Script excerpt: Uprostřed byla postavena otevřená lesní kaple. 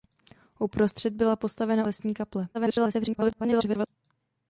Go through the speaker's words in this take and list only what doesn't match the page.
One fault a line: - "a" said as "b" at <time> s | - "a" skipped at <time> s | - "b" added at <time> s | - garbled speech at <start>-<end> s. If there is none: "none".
- "otevřená" skipped at 1.9 s
- garbled speech at 2.5-3.9 s